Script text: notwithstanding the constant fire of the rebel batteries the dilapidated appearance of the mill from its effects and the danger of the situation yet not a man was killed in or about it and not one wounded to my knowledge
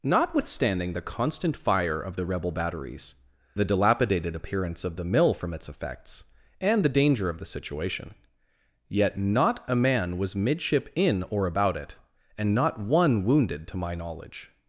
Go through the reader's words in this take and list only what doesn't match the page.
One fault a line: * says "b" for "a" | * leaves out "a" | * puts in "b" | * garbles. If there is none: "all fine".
* says "midship" for "killed"